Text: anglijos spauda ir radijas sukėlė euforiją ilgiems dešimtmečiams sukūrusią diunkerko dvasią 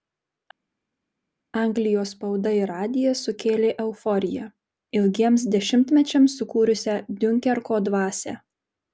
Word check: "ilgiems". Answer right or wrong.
right